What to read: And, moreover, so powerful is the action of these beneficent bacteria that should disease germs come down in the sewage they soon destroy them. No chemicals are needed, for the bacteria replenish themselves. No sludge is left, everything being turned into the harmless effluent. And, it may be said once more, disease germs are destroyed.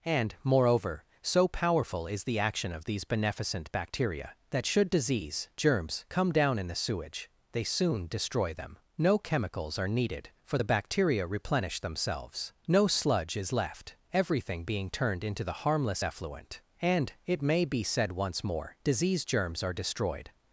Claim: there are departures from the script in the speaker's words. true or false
false